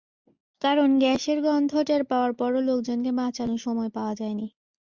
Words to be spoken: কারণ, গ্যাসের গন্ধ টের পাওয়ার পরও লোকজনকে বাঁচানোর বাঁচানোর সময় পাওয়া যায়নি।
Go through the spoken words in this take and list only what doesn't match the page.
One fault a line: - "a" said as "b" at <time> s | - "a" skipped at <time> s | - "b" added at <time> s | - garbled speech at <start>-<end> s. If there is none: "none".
- "বাঁচানোর" skipped at 3.6 s